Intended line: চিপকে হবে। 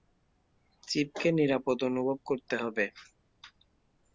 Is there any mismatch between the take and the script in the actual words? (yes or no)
yes